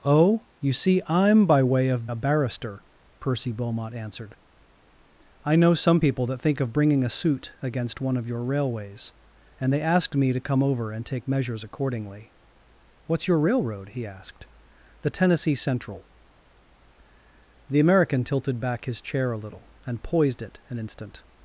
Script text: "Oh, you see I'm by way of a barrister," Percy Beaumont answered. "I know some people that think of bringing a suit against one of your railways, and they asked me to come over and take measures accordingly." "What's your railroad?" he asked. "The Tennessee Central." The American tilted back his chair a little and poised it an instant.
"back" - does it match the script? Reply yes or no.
yes